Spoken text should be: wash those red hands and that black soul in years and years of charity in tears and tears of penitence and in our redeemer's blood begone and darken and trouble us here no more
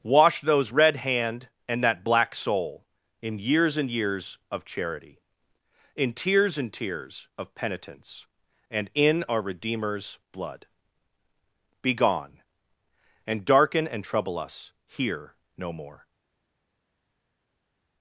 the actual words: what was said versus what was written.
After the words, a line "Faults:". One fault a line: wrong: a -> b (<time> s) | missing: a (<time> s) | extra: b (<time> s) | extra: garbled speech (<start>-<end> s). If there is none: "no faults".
wash those red hand and that black soul in years and years of charity in tears and tears of penitence and in our redeemer's blood begone and darken and trouble us here no more
Faults:
wrong: hands -> hand (1.0 s)